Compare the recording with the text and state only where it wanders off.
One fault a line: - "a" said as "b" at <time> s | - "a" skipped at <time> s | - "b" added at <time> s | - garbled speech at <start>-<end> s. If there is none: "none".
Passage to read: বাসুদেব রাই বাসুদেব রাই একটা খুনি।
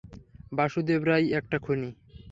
- "বাসুদেব রাই" skipped at 1.2 s